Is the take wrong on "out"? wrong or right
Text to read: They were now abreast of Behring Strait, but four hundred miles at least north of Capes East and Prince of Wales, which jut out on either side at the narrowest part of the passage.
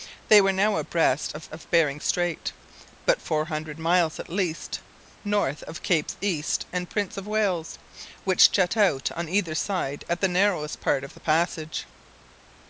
right